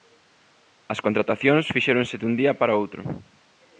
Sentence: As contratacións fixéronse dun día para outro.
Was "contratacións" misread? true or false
false